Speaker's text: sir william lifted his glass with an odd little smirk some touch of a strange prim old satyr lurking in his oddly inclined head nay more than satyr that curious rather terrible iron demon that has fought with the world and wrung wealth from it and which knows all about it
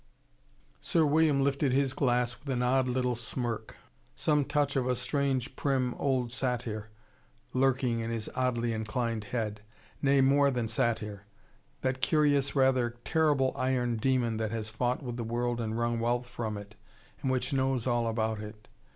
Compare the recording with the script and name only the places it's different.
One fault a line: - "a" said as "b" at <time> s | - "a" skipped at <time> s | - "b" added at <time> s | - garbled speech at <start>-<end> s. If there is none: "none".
none